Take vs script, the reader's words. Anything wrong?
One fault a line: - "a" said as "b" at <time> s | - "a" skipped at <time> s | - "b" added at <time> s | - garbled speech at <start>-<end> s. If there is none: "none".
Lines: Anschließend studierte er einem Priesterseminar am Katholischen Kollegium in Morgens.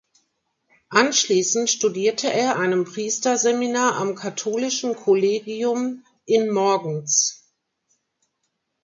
none